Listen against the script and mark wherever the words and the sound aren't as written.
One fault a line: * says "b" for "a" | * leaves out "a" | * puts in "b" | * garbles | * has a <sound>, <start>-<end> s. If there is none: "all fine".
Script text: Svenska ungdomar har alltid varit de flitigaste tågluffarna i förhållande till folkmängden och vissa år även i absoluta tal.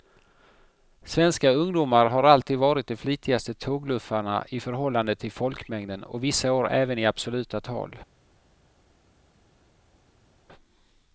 all fine